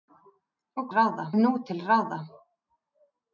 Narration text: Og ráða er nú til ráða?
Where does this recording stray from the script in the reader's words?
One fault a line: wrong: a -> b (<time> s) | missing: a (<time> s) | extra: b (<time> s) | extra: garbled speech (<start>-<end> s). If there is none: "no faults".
no faults